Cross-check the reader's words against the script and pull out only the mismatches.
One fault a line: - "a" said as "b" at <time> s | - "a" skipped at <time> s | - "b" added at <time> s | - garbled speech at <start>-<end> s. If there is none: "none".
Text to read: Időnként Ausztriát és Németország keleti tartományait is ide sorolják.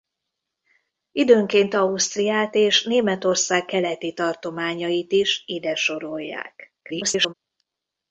- garbled speech at 6.8-7.3 s